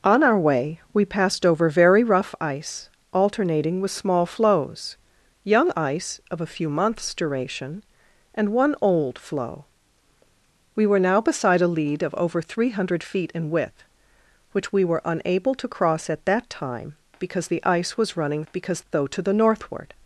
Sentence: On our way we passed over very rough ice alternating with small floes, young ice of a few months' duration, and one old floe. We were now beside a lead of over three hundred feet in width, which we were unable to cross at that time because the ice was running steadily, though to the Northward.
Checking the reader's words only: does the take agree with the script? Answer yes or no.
no